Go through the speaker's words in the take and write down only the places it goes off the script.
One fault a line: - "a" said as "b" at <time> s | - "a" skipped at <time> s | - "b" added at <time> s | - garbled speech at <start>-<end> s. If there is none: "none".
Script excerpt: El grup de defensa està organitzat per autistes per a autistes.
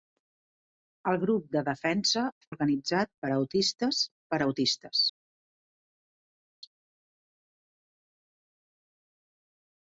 - "està" skipped at 2.2 s